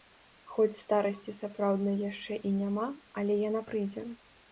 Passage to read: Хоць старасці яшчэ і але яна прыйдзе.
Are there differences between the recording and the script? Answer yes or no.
yes